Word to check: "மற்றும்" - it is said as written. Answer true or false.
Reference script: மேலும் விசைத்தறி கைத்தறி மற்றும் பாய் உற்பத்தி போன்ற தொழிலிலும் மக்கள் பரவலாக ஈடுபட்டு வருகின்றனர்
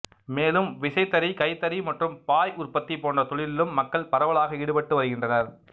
true